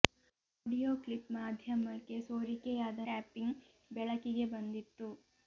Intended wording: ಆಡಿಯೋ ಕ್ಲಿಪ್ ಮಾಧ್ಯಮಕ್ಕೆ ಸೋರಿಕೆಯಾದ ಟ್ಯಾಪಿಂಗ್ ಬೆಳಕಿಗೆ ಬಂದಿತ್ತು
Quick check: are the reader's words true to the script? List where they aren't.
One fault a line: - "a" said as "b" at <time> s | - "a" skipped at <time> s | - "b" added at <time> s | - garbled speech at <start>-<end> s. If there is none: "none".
none